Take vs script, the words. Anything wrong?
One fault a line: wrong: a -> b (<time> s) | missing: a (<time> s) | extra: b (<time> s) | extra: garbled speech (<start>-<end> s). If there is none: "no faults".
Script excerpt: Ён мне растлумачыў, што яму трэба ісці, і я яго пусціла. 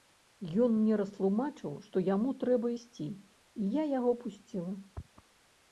no faults